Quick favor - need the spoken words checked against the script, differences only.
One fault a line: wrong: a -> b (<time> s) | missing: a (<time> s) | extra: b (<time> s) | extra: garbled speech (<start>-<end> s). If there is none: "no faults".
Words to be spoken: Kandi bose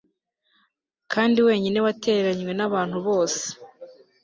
extra: wenyine watereranywe nabantu (1.5 s)